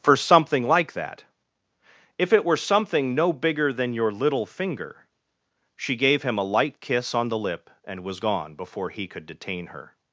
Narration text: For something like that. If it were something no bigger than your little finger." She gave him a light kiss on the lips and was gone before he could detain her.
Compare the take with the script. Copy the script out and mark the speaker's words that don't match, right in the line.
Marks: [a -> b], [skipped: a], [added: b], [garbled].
For something like that. If it were something no bigger than your little finger." She gave him a light kiss on the [lips -> lip] and was gone before he could detain her.